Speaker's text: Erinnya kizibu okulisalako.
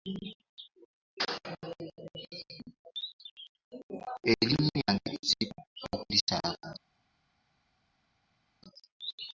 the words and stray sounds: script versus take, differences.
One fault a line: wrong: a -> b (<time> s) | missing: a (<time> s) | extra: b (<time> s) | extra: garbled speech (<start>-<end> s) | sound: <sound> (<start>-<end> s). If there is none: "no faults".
extra: lyange (4.8 s)